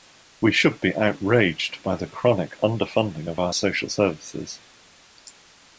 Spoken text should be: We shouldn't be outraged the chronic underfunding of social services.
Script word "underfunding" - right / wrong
right